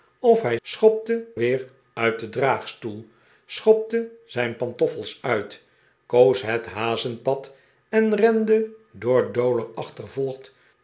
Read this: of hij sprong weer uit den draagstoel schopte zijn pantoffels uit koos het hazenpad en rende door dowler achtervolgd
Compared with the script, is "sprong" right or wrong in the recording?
wrong